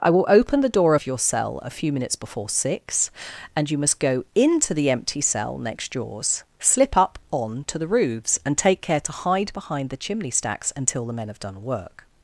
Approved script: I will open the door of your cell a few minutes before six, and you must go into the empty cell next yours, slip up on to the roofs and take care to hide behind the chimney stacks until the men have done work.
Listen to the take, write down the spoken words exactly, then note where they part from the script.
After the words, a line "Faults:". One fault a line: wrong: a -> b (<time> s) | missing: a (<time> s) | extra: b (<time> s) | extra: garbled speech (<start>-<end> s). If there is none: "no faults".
I will open the door of your cell a few minutes before six, and you must go into the empty cell next yours, slip up on to the roofs and take care to hide behind the chimney stacks until the men have done work.
Faults:
no faults